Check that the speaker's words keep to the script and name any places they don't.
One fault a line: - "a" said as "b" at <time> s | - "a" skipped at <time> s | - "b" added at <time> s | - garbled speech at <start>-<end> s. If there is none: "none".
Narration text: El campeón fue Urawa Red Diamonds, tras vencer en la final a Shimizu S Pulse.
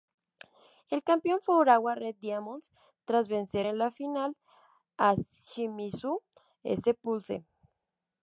none